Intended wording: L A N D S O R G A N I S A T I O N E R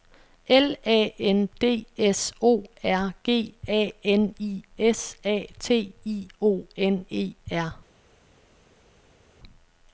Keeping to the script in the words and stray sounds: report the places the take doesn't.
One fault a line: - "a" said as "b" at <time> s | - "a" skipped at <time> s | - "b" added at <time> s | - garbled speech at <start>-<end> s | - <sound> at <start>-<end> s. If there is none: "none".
none